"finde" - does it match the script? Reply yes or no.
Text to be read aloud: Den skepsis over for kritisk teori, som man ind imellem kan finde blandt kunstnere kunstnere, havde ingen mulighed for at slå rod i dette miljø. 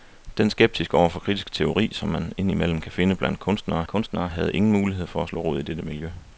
yes